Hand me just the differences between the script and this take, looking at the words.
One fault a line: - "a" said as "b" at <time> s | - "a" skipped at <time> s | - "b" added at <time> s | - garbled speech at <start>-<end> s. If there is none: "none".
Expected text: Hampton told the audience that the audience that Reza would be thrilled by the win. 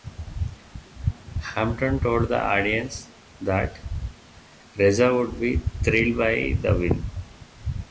- "the audience that" skipped at 3.8 s